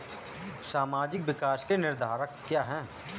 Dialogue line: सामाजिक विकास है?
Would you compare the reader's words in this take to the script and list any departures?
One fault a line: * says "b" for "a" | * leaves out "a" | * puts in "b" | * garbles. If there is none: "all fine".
* puts in "के निर्धारक क्या"